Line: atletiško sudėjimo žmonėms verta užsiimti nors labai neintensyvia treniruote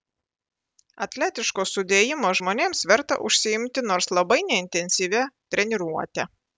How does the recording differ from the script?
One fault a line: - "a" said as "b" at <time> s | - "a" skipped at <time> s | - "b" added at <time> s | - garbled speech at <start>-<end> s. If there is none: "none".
none